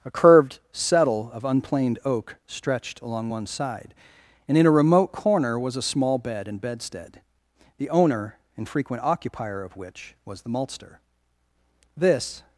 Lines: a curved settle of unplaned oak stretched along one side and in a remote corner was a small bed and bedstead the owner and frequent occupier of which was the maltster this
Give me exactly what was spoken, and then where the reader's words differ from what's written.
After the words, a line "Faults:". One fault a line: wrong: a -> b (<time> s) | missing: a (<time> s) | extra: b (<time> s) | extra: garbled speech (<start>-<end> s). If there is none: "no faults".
a curved settle of unplaned oak stretched along one side and in a remote corner was a small bed and bedstead the owner and frequent occupier of which was the maltster this
Faults:
no faults